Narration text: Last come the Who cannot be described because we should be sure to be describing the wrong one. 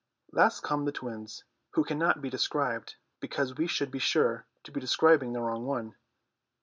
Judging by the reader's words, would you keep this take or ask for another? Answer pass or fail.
fail